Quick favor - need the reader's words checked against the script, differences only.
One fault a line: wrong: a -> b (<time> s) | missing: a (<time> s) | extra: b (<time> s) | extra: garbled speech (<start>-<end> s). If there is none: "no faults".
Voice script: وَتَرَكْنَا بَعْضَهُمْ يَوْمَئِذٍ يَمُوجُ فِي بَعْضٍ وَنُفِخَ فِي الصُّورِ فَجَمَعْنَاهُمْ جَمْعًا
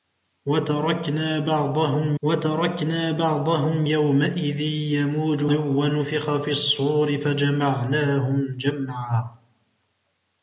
extra: وَتَرَكْنَا بَعْضَهُمْ (2.2 s)
missing: فِي بَعْضٍ (5.5 s)